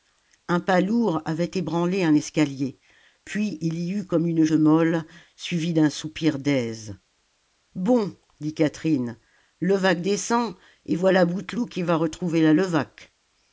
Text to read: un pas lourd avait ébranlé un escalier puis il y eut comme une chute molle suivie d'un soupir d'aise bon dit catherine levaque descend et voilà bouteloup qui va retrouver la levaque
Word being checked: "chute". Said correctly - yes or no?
no